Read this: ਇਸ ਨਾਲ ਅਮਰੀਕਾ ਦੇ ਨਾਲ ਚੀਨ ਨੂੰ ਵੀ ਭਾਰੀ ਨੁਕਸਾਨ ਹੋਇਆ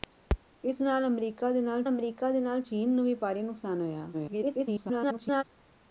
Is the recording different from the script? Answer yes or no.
yes